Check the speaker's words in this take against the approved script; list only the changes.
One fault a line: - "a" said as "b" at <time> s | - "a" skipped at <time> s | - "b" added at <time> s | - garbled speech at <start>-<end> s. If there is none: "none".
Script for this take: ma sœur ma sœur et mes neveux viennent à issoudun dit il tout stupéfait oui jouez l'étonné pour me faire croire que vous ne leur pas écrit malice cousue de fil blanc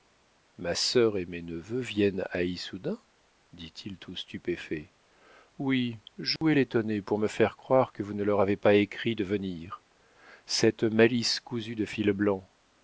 - "ma sœur" skipped at 1.2 s
- "avez" added at 8.4 s
- "de venir cette" added at 9.1 s